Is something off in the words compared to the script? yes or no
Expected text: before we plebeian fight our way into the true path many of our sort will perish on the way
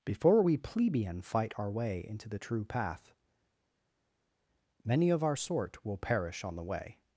no